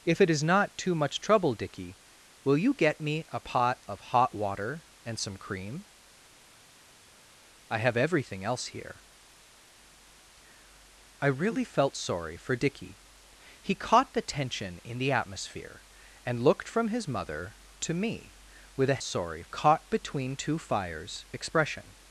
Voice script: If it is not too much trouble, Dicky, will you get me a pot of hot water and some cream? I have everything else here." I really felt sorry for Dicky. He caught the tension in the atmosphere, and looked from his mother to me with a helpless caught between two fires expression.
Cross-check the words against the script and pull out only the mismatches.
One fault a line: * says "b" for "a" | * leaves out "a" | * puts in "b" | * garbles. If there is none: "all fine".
* says "sorry" for "helpless"